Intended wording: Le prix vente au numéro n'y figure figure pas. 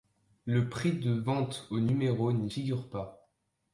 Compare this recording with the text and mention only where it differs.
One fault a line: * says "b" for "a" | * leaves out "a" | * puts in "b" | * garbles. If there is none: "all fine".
* puts in "de"
* leaves out "figure"